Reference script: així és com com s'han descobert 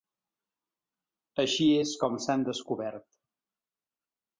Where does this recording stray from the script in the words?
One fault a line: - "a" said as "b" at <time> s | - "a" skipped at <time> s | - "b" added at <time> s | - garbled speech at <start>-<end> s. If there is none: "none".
- "com" skipped at 2.2 s